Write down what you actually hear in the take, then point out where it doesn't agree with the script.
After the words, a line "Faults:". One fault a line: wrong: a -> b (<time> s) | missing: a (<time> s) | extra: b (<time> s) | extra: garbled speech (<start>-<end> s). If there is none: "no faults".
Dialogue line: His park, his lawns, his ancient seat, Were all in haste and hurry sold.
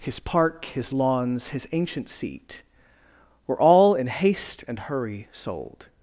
His park, his lawns, his ancient seat, Were all in haste and hurry sold.
Faults:
no faults